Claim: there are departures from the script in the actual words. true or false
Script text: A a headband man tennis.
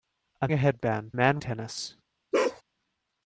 false